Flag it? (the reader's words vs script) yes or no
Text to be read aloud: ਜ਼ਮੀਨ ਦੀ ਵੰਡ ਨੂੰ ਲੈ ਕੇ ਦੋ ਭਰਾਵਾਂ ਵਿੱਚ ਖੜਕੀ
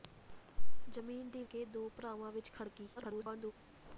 yes